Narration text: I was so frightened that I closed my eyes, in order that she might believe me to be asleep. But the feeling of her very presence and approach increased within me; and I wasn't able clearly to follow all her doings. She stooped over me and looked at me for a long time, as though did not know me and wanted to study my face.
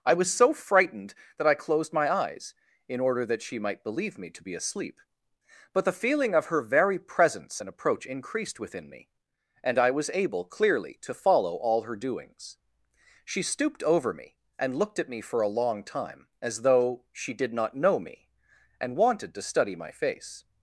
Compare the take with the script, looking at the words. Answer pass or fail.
fail